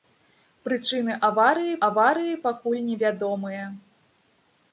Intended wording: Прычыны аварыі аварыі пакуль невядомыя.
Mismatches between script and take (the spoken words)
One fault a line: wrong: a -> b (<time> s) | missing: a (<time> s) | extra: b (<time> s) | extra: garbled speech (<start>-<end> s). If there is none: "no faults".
no faults